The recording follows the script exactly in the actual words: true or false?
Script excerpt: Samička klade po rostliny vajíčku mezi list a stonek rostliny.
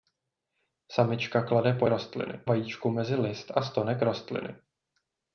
true